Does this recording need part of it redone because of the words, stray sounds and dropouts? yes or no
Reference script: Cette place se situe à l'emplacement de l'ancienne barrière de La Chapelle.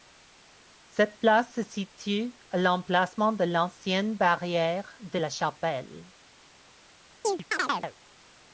yes